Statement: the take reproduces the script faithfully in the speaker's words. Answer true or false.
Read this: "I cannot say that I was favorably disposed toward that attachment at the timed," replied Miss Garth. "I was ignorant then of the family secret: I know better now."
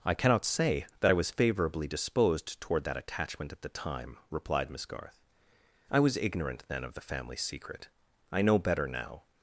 false